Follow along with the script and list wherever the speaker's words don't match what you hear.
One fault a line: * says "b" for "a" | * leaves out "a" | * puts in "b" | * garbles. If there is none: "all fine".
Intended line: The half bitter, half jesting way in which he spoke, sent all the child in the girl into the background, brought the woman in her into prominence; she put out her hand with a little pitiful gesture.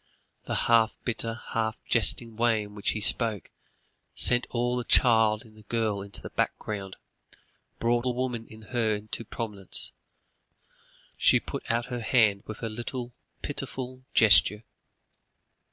all fine